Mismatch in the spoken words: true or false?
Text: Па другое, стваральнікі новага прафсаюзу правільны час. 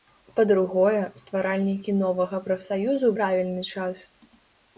false